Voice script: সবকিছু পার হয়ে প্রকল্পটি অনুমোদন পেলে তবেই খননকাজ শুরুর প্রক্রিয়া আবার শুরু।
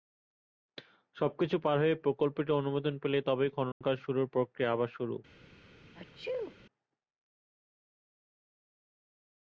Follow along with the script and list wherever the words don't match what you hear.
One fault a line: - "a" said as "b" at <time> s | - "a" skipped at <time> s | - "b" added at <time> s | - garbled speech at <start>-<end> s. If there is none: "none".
none